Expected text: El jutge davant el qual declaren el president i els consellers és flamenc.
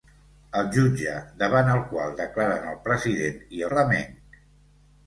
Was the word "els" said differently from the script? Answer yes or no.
yes